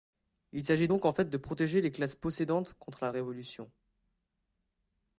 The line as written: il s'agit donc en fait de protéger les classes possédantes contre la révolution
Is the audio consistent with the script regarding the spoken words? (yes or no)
yes